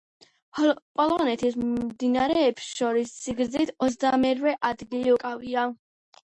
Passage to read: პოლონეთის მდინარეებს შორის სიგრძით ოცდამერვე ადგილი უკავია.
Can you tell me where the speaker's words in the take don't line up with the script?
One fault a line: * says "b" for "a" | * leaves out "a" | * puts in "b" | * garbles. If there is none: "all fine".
all fine